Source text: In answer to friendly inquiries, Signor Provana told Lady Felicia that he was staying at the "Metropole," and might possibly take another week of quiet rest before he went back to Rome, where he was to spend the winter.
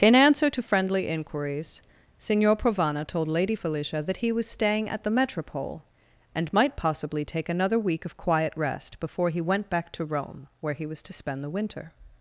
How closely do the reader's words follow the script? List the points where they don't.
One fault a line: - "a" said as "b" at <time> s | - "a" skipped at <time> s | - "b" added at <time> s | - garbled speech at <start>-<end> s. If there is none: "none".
none